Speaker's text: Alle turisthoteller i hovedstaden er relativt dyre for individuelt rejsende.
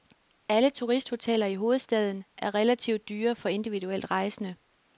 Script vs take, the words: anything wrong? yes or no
no